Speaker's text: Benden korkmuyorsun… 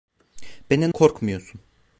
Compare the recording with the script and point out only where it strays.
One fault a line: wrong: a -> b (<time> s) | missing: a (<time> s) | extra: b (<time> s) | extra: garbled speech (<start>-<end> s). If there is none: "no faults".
no faults